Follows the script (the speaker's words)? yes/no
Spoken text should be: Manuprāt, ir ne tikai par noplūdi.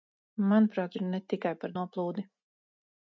yes